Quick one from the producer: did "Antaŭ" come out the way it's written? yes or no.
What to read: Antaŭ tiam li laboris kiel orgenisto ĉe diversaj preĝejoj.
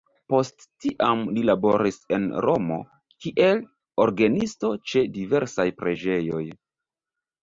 no